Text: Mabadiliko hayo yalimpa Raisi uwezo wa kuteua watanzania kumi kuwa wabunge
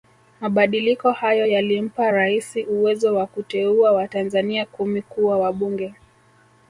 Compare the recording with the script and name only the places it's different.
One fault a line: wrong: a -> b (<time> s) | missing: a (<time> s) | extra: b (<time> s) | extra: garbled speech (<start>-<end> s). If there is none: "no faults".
no faults